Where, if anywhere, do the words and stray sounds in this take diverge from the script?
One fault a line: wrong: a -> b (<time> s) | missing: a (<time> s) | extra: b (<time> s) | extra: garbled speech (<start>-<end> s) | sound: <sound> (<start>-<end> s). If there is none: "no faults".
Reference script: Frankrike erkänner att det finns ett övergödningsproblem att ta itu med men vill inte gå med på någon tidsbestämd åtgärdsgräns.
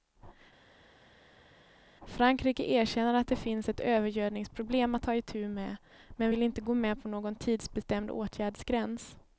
no faults